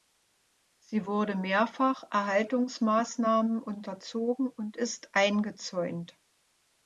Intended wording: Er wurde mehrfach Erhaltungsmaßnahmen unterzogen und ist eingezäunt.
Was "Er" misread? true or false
true